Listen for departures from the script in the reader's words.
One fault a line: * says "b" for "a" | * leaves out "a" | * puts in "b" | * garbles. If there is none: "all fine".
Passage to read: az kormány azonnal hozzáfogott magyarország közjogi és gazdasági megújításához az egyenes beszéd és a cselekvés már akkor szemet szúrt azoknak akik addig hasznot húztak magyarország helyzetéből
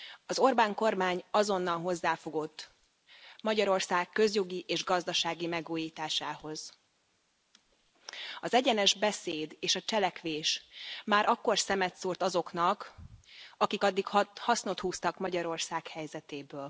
* puts in "orbán"